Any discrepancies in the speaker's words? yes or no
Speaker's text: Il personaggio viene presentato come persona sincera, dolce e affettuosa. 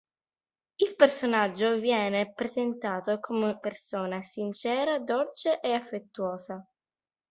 no